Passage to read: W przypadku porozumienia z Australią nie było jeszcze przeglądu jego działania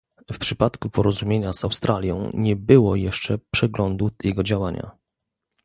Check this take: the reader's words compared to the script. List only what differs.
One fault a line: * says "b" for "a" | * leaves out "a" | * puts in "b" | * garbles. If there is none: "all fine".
all fine